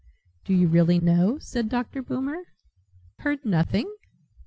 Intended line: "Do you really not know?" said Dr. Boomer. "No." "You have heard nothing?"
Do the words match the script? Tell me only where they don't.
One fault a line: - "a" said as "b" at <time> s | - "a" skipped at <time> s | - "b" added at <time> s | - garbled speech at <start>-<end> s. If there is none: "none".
- "not" skipped at 1.0 s
- "No You have" skipped at 2.4 s